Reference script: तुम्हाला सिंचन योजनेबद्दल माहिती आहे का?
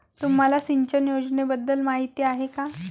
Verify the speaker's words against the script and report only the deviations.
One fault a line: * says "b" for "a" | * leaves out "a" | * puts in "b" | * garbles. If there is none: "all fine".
all fine